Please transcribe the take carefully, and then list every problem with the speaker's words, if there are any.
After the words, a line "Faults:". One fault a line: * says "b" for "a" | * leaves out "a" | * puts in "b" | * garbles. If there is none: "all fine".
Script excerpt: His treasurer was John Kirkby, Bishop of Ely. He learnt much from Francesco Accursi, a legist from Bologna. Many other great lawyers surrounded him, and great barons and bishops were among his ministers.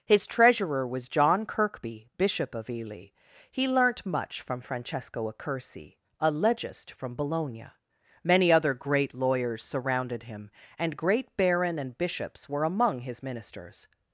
His treasurer was John Kirkby, Bishop of Ely. He learnt much from Francesco Accursi, a legist from Bologna. Many other great lawyers surrounded him, and great baron and bishops were among his ministers.
Faults:
* says "baron" for "barons"